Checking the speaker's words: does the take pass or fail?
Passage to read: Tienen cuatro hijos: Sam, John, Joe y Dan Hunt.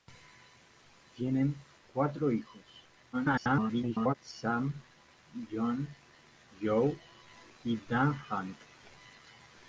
fail